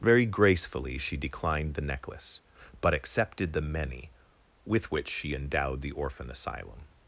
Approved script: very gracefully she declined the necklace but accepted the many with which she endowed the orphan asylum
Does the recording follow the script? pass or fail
pass